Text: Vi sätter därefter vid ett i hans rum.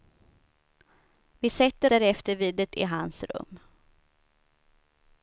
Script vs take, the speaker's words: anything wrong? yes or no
no